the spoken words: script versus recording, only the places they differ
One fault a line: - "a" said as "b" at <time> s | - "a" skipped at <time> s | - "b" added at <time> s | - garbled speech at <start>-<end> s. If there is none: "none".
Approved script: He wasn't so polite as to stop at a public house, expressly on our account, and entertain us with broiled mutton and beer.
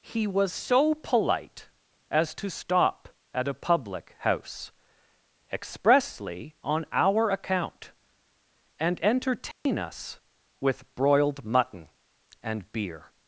- "wasn't" said as "was" at 0.3 s